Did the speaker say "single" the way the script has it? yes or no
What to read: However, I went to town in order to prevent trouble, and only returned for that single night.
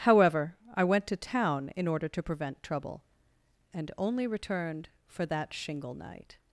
no